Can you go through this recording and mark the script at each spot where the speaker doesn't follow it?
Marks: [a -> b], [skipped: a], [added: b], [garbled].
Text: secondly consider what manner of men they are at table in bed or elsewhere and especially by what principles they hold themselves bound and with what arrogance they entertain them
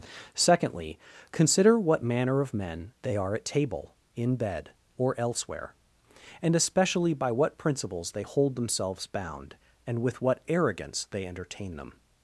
secondly consider what manner of men they are at table in bed or elsewhere and especially by what principles they hold themselves bound and with what arrogance they entertain them